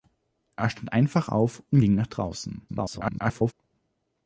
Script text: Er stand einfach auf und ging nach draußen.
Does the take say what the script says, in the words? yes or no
no